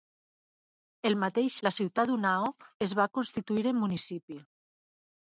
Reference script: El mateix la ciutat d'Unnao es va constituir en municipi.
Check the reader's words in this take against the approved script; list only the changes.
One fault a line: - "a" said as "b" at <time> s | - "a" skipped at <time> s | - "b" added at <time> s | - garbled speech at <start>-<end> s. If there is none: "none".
none